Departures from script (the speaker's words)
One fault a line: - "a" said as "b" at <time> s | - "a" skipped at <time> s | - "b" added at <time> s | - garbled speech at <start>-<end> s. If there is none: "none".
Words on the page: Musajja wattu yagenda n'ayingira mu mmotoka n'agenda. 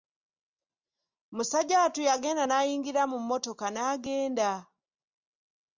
none